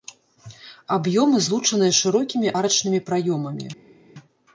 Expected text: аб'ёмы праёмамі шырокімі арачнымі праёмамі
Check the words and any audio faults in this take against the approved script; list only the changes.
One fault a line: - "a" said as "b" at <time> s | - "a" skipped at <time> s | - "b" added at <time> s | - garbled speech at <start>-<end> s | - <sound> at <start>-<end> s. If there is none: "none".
- "праёмамі" said as "злучаныя" at 1.5 s